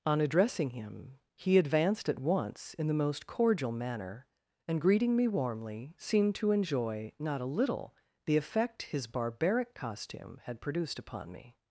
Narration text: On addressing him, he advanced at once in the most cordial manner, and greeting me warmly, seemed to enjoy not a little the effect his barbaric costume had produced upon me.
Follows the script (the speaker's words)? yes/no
yes